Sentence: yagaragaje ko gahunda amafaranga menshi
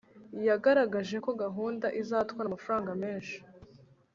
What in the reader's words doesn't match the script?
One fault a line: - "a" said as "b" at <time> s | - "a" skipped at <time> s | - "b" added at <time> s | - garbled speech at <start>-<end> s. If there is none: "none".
- "izatwara" added at 2.0 s